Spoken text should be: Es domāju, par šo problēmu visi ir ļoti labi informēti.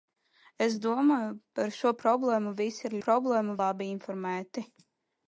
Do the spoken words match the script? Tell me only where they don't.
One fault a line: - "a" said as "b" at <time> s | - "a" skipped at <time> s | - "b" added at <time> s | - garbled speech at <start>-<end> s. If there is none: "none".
- "ļoti" said as "problēmu" at 3.1 s